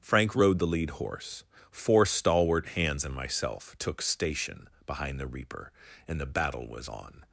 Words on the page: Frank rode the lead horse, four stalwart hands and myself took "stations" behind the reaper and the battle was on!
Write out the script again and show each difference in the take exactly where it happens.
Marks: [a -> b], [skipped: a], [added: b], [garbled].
Frank rode the lead horse, four stalwart hands and myself took ["stations" -> station] behind the reaper and the battle was on!